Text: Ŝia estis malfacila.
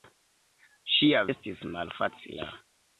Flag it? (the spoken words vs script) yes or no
no